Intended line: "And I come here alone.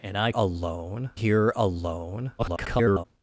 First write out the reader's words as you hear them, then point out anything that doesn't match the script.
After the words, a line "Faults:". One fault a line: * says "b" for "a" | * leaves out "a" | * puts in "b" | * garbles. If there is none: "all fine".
"And I alone here alone. [garbled]
Faults:
* says "alone" for "come"
* garbles